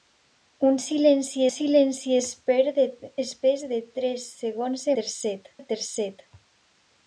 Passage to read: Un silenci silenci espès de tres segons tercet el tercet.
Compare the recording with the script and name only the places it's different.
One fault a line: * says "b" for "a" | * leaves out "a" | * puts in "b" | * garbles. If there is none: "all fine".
all fine